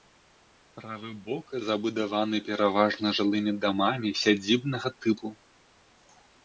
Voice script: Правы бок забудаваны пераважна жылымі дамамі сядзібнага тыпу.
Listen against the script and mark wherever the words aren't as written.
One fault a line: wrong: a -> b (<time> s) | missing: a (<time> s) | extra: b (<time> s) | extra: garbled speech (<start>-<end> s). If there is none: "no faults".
no faults